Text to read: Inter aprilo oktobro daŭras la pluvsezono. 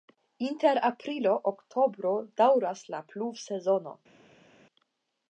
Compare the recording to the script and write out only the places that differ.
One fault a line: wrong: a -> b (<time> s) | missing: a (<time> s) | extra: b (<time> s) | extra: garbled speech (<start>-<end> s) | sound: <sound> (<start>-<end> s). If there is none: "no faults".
no faults